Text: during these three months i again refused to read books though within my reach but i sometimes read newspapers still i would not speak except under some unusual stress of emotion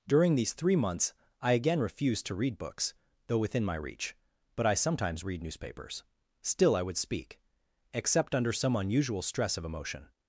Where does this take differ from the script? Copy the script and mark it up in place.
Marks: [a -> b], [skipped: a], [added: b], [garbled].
during these three months i again refused to read books though within my reach but i sometimes read newspapers still i would [skipped: not] speak except under some unusual stress of emotion